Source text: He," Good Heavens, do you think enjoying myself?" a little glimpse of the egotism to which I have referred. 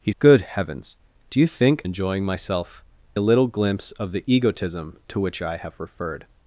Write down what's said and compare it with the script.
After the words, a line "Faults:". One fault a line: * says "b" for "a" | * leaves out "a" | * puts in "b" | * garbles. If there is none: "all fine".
He," Good Heavens, do you think enjoying myself?" a little glimpse of the egotism to which I have referred.
Faults:
all fine